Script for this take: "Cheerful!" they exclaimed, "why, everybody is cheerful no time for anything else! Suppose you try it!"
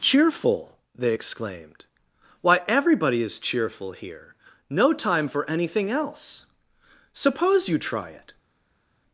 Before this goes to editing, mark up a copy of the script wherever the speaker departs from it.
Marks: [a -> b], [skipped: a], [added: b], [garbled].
"Cheerful!" they exclaimed, "why, everybody is cheerful [added: here] no time for anything else! Suppose you try it!"